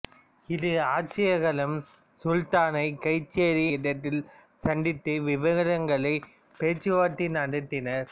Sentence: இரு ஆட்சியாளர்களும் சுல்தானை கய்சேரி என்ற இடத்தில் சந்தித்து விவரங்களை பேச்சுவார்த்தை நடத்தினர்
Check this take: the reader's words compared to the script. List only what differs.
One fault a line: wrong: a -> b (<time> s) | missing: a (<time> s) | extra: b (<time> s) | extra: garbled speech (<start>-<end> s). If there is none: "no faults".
missing: என்ற (3.7 s)